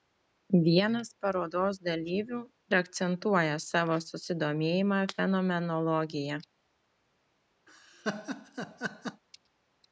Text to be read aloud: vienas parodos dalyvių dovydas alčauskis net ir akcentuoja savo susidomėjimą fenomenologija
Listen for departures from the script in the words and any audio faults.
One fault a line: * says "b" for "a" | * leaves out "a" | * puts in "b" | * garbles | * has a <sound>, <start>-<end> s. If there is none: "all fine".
* leaves out "dovydas alčauskis net"
* has a laugh, 7.7-9.2 s